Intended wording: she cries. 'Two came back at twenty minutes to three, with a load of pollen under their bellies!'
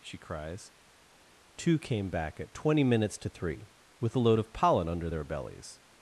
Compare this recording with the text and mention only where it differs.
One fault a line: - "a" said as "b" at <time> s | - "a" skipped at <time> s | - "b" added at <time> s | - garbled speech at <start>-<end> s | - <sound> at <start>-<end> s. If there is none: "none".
none